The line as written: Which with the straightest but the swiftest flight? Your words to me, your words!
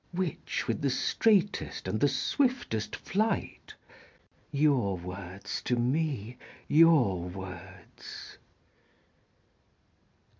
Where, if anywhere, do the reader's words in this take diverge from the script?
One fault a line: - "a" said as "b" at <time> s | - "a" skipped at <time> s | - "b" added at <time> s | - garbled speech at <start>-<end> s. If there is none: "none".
- "but" said as "and" at 1.9 s